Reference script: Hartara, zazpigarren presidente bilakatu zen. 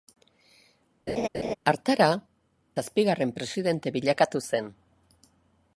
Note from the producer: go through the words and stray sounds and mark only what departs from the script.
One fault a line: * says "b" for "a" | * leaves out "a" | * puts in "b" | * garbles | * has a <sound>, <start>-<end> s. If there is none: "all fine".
* has a laugh, 1.1-1.5 s